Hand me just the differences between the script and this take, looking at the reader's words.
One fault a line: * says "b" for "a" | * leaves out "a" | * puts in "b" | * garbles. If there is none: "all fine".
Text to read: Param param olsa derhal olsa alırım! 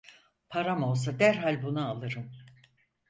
* leaves out "param"
* says "bunu" for "olsa"